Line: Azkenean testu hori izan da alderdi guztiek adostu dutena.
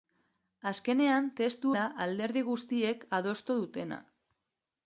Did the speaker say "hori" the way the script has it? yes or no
no